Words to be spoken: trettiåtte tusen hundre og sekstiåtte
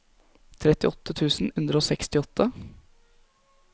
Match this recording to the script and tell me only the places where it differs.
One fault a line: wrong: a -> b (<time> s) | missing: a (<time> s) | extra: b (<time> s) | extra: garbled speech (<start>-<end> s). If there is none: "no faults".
no faults